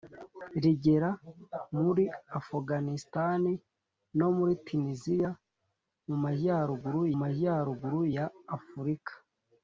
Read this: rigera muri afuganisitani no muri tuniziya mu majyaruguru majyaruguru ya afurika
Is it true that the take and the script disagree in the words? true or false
false